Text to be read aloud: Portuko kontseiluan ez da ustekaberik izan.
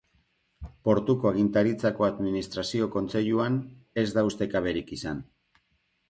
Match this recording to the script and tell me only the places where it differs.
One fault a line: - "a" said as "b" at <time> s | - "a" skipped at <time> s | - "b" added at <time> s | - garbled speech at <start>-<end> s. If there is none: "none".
- "agintaritzako administrazio" added at 1.3 s